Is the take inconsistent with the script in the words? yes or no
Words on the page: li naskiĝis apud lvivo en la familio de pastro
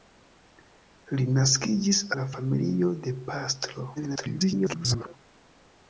yes